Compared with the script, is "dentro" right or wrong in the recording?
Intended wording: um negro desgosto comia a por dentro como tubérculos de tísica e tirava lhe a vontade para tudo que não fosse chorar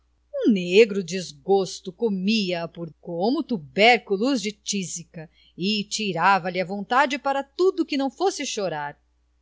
wrong